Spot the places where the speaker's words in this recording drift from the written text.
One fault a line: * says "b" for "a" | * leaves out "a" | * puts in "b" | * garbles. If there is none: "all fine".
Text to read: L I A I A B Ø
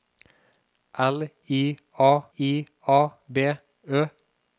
all fine